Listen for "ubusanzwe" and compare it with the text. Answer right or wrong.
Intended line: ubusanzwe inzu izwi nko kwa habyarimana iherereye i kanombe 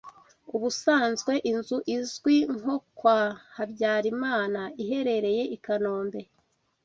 right